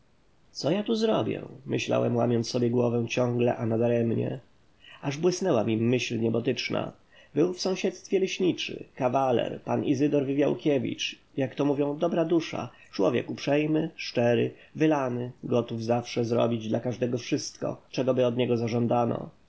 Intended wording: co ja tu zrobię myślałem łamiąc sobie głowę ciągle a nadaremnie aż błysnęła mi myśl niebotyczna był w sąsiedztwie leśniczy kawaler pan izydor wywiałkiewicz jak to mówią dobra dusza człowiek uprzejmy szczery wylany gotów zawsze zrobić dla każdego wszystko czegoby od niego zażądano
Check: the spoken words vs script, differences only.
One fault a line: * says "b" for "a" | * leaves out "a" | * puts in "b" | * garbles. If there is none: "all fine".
all fine